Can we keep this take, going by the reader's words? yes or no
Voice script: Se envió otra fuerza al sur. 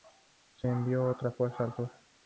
yes